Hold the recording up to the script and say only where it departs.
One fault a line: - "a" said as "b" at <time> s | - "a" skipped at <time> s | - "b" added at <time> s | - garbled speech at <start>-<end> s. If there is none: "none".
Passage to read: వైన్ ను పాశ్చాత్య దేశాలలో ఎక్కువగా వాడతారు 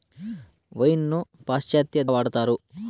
- "దేశాలలో ఎక్కువగా" skipped at 2.0 s